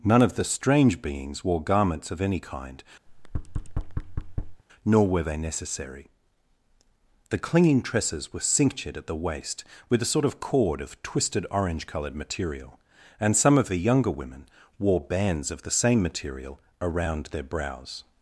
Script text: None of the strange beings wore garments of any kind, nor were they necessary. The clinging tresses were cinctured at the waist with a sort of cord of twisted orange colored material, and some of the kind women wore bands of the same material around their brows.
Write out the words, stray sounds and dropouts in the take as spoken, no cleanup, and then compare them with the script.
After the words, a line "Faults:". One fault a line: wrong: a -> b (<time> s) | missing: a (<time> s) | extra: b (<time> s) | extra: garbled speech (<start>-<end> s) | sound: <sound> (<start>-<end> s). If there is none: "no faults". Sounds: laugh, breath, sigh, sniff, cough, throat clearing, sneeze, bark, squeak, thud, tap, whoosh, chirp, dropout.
None of the strange beings wore garments of any kind, nor were they necessary. The clinging tresses were cinctured at the waist with a sort of cord of twisted orange colored material, and some of the younger women wore bands of the same material around their brows.
Faults:
sound: thud (3.1-4.6 s)
wrong: kind -> younger (13.8 s)